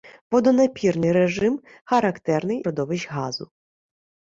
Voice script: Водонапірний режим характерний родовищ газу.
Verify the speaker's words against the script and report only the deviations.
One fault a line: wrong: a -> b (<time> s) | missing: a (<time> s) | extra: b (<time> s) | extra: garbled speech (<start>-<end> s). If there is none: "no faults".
no faults